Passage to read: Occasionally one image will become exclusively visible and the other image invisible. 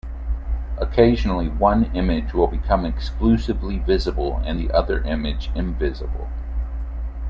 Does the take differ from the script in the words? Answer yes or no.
no